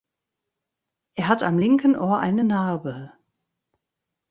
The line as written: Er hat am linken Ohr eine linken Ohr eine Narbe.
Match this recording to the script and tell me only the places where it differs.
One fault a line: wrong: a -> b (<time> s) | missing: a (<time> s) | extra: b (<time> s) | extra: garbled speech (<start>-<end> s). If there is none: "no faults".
missing: linken Ohr eine (2.4 s)